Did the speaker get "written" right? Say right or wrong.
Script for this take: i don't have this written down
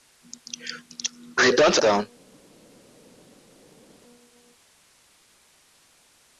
wrong